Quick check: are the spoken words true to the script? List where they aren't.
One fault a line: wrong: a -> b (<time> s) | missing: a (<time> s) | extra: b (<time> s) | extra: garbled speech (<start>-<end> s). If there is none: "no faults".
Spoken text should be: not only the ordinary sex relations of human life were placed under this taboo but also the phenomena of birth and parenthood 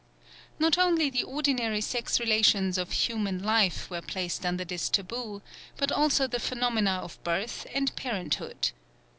no faults